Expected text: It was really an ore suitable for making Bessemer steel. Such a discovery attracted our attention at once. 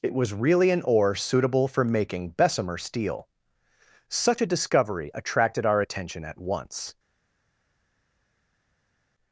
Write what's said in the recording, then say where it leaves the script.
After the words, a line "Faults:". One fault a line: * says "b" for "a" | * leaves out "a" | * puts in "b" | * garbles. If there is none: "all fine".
It was really an ore suitable for making Bessemer steel. Such a discovery attracted our attention at once.
Faults:
all fine